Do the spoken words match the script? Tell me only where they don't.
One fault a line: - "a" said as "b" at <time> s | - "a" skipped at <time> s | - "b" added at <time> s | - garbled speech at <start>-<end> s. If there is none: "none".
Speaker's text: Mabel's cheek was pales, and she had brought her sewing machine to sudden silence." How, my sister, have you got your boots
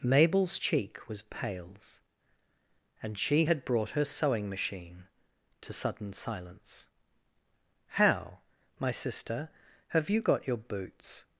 none